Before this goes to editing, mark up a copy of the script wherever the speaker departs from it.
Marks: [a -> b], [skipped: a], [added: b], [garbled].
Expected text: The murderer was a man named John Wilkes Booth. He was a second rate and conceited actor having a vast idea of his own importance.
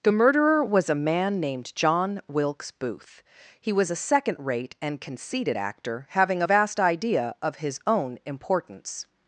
The murderer was a man named John Wilkes Booth. He was a second rate and conceited actor having a vast idea of his own importance.